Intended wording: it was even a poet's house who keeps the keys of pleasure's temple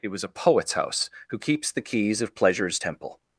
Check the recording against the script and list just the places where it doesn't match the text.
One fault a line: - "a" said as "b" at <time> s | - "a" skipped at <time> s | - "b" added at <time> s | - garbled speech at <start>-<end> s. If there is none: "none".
- "even" skipped at 0.2 s